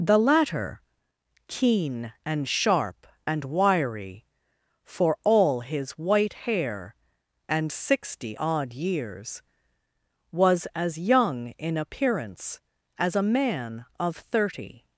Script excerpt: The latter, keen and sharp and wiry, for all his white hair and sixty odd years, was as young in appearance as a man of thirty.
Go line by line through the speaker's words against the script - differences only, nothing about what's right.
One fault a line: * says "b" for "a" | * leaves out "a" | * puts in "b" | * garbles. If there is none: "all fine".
all fine